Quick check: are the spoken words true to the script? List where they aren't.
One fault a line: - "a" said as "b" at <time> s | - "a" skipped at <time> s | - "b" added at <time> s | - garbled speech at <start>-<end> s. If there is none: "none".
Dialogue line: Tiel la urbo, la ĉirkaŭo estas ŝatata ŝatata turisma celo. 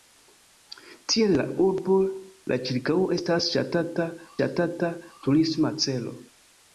none